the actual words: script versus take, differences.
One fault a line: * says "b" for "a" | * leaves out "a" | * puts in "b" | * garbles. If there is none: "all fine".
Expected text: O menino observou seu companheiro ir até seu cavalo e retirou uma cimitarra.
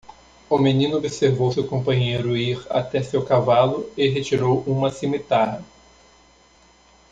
all fine